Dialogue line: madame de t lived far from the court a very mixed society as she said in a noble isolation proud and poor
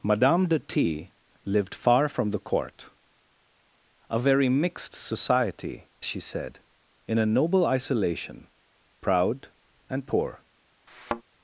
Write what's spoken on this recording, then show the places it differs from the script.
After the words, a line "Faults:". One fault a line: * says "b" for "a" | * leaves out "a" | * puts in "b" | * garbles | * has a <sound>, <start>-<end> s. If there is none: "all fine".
madame de t lived far from the court a very mixed society she said in a noble isolation proud and poor
Faults:
* leaves out "as"
* has a thud, 10.9-11.2 s